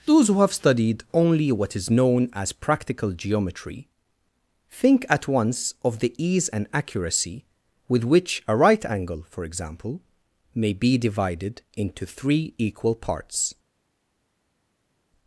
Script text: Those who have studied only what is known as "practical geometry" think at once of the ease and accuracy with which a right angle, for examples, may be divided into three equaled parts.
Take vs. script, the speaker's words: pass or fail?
fail